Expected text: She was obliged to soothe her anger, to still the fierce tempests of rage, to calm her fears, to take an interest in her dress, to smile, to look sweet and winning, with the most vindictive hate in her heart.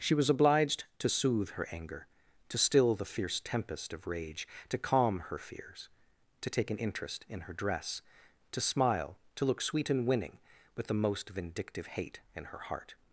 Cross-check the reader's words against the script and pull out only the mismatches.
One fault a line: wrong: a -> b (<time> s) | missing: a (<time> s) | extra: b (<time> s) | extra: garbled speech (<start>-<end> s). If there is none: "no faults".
wrong: tempests -> tempest (3.4 s)